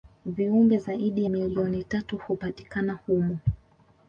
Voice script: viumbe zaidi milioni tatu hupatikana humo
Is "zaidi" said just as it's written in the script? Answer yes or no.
yes